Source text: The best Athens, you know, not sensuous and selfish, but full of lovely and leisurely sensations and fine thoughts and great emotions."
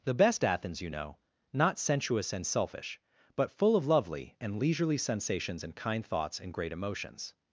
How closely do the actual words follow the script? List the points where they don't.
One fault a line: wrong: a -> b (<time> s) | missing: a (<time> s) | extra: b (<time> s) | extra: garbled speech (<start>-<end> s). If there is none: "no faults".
wrong: fine -> kind (5.7 s)